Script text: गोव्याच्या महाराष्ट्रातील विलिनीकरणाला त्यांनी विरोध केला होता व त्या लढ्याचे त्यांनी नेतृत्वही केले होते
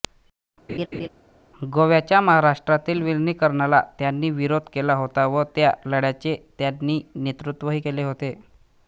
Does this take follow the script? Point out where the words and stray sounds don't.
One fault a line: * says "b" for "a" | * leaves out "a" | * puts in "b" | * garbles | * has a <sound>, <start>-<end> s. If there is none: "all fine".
* has a laugh, 0.7-1.1 s